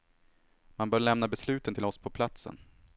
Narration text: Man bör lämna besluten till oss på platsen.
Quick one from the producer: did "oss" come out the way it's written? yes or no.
yes